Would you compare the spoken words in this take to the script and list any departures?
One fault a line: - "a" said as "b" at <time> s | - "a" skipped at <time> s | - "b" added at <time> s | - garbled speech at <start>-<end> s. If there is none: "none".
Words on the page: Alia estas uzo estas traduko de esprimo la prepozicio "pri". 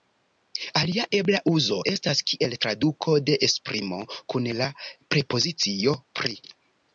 - "estas" said as "ebla" at 1.2 s
- "kiel" added at 2.3 s
- "kun" added at 4.4 s